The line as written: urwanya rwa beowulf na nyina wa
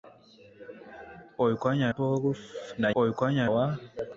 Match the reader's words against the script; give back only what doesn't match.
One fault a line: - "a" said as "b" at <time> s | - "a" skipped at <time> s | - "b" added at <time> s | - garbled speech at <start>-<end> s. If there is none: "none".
- "rwa" skipped at 1.9 s
- "nyina" said as "urwanya" at 3.0 s